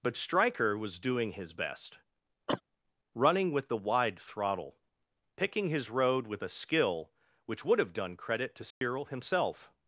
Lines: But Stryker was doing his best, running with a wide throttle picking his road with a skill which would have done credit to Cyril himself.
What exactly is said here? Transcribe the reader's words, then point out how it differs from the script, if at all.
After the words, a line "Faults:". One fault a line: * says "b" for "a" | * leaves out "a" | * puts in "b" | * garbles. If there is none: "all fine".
But Stryker was doing his best, running with the wide throttle picking his road with a skill which would have done credit to Cyril himself.
Faults:
* says "the" for "a"